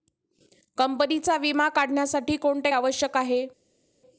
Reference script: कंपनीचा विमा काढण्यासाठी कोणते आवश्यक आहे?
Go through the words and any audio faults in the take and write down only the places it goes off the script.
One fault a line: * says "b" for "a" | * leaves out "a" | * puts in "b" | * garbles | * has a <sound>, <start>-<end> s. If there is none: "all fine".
all fine